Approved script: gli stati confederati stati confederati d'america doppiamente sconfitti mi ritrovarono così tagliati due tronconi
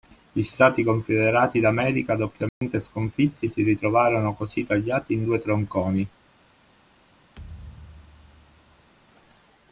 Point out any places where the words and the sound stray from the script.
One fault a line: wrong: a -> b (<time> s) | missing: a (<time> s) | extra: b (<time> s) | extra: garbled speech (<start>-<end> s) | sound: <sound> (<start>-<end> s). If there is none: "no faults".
missing: stati confederati (1.6 s)
sound: dropout (2.5-2.6 s)
wrong: mi -> si (3.5 s)
extra: in (5.1 s)
sound: thud (7.4-8.9 s)